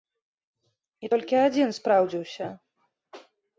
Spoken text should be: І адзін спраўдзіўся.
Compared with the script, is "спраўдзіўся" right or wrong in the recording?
right